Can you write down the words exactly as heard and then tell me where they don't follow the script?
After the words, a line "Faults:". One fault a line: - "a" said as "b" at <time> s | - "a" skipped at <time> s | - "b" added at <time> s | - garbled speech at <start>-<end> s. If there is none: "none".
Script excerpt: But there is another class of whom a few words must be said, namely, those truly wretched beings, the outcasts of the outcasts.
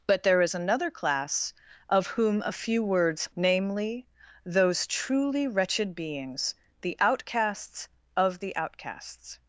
But there is another class of whom a few words namely, those truly wretched beings, the outcasts of the outcasts.
Faults:
- "must be said" skipped at 3.3 s